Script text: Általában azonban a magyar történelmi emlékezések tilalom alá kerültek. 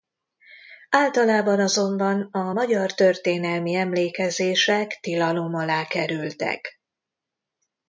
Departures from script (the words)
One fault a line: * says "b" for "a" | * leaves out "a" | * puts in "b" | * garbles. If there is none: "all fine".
all fine